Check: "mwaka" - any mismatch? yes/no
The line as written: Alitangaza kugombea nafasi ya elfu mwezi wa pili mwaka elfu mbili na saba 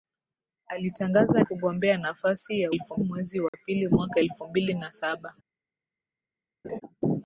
no